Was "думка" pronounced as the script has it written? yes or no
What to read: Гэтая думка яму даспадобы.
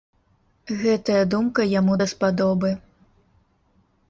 yes